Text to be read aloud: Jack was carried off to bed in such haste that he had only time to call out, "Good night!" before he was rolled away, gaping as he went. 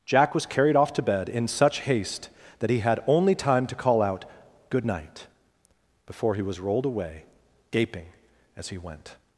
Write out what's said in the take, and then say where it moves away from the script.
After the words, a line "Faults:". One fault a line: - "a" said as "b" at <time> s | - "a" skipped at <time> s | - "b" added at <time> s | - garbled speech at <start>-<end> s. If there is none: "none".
Jack was carried off to bed in such haste that he had only time to call out, "Good night!" before he was rolled away, gaping as he went.
Faults:
none